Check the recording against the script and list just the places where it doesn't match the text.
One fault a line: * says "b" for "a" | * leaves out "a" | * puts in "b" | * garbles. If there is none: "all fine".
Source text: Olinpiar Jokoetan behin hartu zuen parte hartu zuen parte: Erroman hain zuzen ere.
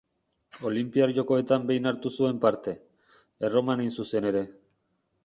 * leaves out "hartu zuen parte"